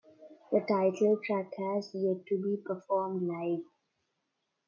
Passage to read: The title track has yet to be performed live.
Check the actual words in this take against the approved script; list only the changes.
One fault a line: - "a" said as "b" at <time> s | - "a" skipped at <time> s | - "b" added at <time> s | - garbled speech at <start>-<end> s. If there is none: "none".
none